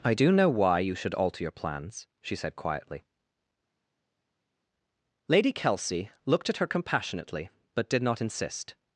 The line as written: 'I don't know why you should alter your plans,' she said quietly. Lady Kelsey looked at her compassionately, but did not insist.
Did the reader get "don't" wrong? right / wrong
wrong